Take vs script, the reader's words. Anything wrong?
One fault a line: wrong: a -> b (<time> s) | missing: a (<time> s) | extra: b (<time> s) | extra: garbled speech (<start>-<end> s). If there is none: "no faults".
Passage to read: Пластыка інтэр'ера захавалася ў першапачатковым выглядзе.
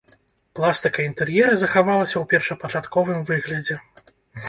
no faults